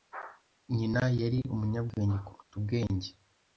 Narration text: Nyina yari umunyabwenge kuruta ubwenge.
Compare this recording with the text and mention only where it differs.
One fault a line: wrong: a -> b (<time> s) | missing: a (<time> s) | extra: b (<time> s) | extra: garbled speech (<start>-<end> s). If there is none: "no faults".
no faults